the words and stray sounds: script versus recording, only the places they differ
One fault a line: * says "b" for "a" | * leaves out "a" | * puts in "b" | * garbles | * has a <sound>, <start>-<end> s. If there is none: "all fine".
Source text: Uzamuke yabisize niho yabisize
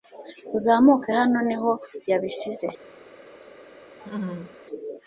* says "hano" for "yabisize"
* has a laugh, 4.0-4.6 s